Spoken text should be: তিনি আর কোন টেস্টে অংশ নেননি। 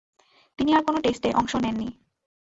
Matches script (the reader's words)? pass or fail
pass